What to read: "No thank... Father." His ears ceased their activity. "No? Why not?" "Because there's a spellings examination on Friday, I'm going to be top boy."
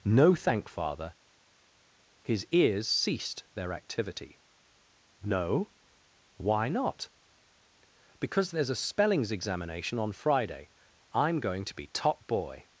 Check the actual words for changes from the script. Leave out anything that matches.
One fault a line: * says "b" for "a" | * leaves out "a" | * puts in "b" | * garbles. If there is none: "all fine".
all fine